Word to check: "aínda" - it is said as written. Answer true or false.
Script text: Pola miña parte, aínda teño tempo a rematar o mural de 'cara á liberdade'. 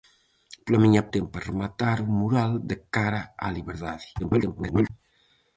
false